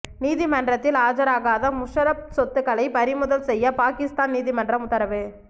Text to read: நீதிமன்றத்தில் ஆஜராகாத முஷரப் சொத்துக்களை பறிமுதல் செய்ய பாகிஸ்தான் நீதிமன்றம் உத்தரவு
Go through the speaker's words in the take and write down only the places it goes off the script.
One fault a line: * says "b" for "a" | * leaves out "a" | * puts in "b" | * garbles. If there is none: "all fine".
all fine